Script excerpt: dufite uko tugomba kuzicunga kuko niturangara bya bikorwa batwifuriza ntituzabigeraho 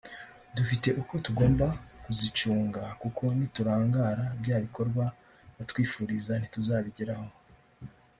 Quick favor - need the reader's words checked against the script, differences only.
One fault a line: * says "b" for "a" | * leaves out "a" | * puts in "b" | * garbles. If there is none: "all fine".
all fine